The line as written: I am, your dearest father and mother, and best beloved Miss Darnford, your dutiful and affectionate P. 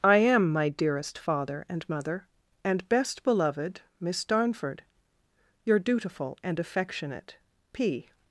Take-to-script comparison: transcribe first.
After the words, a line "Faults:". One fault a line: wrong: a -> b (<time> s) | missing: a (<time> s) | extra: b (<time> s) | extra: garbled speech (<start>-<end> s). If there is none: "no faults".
I am, my dearest father and mother, and best beloved Miss Darnford, your dutiful and affectionate P.
Faults:
wrong: your -> my (0.5 s)